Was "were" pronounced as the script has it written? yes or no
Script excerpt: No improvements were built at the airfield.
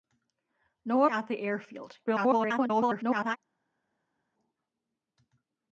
no